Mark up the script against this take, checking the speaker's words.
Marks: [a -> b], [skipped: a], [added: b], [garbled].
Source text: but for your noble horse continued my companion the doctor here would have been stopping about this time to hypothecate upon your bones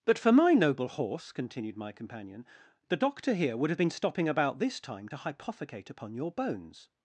but for [your -> my] noble horse continued my companion the doctor here would have been stopping about this time to hypothecate upon your bones